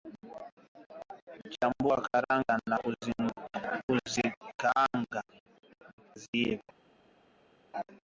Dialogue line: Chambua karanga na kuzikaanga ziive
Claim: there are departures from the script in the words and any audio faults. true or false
false